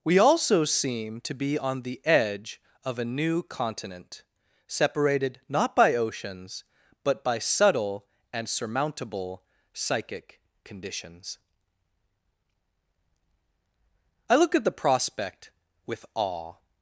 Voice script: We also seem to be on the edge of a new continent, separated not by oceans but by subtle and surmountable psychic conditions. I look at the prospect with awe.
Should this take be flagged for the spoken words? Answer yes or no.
no